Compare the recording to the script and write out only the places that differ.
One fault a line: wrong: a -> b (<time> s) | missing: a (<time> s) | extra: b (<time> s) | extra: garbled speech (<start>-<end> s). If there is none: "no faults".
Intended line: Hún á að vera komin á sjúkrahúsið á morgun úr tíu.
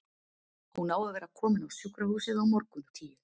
no faults